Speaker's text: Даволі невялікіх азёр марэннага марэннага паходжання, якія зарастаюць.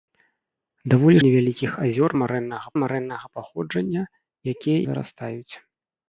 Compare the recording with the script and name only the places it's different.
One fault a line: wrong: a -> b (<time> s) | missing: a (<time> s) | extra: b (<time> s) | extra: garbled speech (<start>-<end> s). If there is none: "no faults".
no faults